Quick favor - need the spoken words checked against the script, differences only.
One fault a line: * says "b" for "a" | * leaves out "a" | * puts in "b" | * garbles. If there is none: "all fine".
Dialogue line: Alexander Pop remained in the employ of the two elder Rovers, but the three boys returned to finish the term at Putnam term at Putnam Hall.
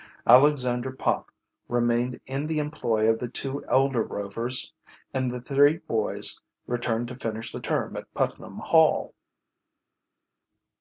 * says "and" for "but"
* leaves out "term at Putnam"